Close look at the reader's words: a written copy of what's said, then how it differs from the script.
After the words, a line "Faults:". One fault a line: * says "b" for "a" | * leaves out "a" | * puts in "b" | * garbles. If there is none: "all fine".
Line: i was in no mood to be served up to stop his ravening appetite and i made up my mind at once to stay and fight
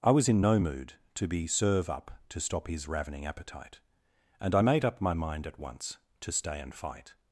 i was in no mood to be serve up to stop his ravening appetite and i made up my mind at once to stay and fight
Faults:
* says "serve" for "served"